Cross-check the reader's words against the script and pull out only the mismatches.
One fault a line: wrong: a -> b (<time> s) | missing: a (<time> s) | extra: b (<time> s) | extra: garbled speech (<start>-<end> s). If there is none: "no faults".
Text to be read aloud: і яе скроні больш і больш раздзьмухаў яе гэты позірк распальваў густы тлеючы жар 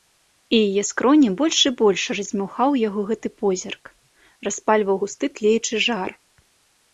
wrong: яе -> яго (2.8 s)